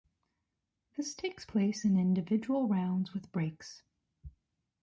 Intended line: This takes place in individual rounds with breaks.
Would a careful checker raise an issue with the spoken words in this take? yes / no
no